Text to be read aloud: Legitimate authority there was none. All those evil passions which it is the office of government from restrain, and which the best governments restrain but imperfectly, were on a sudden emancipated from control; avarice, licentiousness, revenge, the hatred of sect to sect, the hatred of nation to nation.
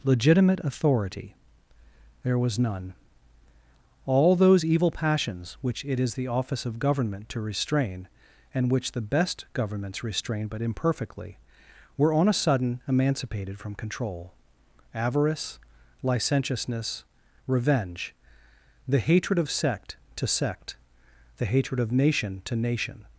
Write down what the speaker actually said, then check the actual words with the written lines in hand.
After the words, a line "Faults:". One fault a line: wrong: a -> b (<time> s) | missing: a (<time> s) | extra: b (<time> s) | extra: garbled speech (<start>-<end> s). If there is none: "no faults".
Legitimate authority there was none. All those evil passions which it is the office of government to restrain, and which the best governments restrain but imperfectly, were on a sudden emancipated from control; avarice, licentiousness, revenge, the hatred of sect to sect, the hatred of nation to nation.
Faults:
wrong: from -> to (7.3 s)